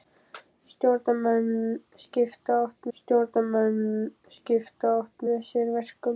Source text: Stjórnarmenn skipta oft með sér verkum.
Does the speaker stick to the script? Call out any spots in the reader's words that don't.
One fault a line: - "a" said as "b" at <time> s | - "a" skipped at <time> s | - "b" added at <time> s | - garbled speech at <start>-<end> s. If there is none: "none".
- "stjórnarmenn skipta oft" added at 3.0 s